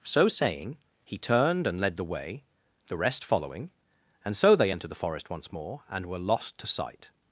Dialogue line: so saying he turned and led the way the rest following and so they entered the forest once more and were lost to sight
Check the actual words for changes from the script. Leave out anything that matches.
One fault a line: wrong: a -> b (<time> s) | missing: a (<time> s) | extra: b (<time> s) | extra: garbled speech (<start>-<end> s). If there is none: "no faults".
no faults